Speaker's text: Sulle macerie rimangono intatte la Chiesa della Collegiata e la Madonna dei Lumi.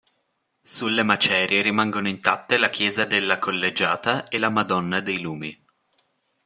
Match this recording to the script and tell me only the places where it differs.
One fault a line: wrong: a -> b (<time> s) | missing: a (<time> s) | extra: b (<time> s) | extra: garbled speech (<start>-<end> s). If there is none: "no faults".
no faults